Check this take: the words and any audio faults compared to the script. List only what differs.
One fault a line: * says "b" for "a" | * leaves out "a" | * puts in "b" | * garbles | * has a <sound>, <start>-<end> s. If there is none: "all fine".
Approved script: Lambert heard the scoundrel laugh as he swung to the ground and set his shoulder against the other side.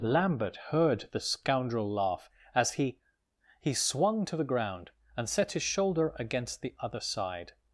* puts in "he"